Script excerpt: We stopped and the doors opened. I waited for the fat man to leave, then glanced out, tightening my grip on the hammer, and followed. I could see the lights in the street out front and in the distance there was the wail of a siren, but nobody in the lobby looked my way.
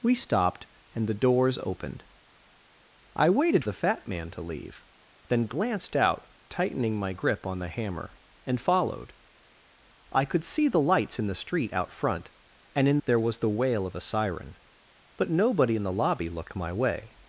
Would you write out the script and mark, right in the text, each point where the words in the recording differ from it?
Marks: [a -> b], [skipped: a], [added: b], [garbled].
We stopped and the doors opened. I waited [skipped: for] the fat man to leave, then glanced out, tightening my grip on the hammer, and followed. I could see the lights in the street out front and in [skipped: the distance] there was the wail of a siren, but nobody in the lobby looked my way.